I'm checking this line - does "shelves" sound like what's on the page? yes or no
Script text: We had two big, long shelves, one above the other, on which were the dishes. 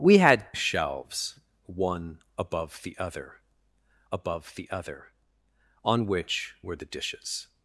no